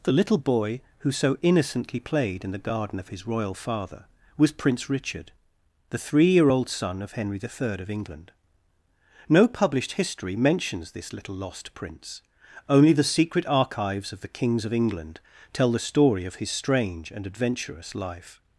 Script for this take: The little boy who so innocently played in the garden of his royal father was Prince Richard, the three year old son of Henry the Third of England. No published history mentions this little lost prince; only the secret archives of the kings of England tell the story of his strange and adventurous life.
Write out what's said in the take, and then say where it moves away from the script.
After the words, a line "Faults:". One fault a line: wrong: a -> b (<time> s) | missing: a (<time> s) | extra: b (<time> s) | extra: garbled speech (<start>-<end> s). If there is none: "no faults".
The little boy who so innocently played in the garden of his royal father was Prince Richard, the three year old son of Henry the Third of England. No published history mentions this little lost prince; only the secret archives of the kings of England tell the story of his strange and adventurous life.
Faults:
no faults